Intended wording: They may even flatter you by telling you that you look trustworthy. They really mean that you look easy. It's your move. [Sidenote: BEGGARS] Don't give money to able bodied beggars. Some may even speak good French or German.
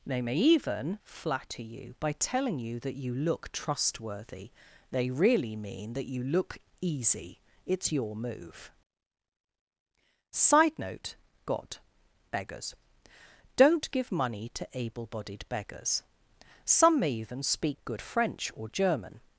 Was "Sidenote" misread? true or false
true